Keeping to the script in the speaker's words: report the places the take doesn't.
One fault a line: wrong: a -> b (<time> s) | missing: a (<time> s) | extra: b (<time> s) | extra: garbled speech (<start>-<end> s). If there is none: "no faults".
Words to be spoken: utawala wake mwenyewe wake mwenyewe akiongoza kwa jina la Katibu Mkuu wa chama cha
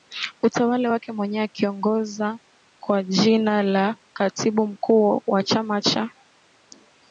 missing: wake mwenyewe (1.4 s)